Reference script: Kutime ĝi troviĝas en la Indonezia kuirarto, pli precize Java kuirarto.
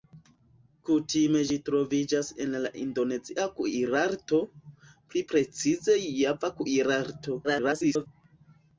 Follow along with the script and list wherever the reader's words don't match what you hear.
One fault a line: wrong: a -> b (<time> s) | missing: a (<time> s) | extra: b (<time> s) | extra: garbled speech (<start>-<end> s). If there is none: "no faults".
extra: garbled speech (7.4-8.1 s)